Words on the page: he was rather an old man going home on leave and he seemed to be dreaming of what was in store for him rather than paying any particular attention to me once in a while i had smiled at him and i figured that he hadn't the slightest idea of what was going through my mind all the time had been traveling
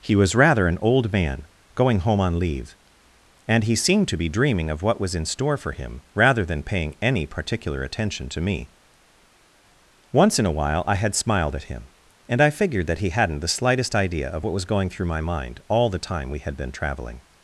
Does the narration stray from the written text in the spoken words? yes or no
yes